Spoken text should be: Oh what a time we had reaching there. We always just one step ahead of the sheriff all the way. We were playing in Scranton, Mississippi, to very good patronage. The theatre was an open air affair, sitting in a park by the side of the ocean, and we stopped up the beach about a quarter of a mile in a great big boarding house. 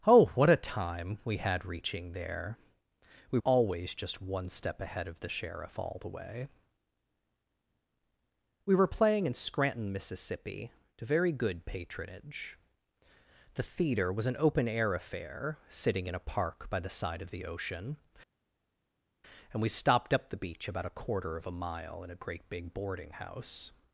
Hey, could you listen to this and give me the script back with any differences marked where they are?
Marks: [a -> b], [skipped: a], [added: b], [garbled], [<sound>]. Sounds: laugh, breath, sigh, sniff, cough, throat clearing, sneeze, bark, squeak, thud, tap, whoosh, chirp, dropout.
Oh what a time we had reaching there. We always just one step ahead of the sheriff all the way. We were playing in Scranton, Mississippi, to very good patronage. The theatre was an open air affair, sitting in a park by the side of the ocean, and we stopped up the beach about a quarter of a mile in a great big boarding house.